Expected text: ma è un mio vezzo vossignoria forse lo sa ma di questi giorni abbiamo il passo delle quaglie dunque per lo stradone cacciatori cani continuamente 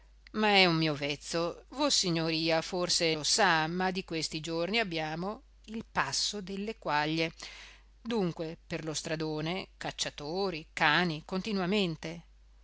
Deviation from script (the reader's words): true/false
false